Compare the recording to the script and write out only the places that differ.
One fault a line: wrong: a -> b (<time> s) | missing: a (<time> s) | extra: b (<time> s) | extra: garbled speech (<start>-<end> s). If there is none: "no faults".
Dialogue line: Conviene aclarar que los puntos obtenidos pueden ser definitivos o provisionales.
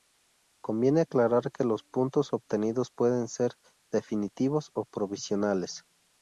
no faults